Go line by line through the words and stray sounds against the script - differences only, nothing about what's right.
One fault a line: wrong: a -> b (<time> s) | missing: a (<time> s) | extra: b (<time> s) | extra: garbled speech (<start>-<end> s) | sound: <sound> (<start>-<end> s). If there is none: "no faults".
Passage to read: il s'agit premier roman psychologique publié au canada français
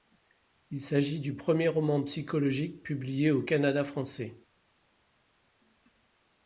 extra: du (1.2 s)